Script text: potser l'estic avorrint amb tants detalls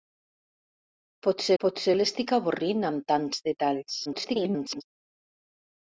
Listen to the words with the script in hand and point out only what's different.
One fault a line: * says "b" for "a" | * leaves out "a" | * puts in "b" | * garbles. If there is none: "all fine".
* puts in "potser"
* garbles